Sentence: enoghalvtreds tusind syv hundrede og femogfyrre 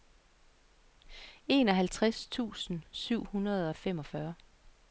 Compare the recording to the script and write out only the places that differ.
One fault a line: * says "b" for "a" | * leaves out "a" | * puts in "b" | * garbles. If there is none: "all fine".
all fine